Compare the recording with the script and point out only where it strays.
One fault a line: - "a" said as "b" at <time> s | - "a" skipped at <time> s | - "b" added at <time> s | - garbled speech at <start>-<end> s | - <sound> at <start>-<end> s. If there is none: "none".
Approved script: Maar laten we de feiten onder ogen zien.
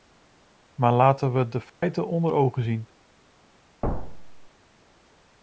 - dropout at 1.7-1.8 s
- thud at 3.8-4.5 s